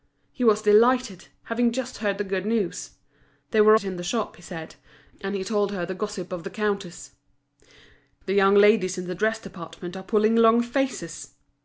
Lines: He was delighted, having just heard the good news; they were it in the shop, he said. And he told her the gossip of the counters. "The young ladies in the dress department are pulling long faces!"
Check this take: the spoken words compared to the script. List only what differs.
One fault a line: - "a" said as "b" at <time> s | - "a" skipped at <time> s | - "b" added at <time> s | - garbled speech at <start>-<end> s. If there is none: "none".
none